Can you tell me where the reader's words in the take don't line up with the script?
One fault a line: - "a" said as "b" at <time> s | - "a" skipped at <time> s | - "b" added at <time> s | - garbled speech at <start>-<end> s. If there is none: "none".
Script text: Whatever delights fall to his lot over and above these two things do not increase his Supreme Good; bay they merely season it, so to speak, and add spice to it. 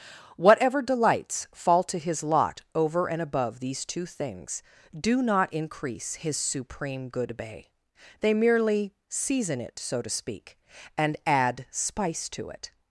none